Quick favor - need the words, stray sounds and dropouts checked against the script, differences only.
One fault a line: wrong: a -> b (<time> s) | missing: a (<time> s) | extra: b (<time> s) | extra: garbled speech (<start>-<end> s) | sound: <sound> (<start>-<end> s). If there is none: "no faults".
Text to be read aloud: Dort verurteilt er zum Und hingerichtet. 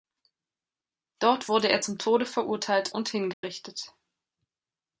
wrong: verurteilt -> wurde (1.5 s)
extra: Tode verurteilt (2.0 s)
sound: dropout (3.3-3.4 s)